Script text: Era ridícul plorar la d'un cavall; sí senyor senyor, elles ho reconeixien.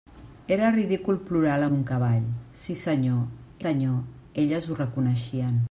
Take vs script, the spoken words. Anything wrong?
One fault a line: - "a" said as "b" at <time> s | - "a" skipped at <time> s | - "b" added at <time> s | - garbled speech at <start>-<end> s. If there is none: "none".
none